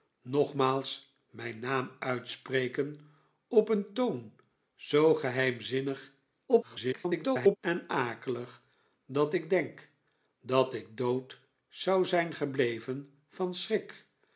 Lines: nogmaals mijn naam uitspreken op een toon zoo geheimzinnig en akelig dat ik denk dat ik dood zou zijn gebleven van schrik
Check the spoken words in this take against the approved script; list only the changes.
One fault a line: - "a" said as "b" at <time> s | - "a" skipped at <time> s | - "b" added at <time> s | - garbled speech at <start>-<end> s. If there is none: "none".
- garbled speech at 6.5-7.6 s